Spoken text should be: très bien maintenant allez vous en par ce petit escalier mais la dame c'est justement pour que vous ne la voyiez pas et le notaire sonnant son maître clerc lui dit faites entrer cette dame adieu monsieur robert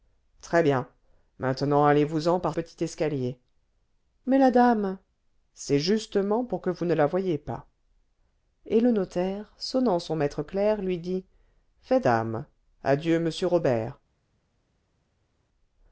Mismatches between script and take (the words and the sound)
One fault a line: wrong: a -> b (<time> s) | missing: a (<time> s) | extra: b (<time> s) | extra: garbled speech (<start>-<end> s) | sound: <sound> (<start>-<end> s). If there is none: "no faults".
missing: ce (2.5 s)
missing: entrer cette (12.1 s)